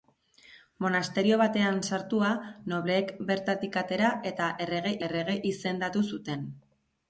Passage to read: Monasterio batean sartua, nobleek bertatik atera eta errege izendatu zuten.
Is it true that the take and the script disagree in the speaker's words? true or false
true